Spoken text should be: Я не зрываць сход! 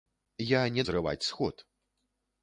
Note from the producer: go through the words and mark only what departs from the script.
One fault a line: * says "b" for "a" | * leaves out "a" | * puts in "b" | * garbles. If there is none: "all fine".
all fine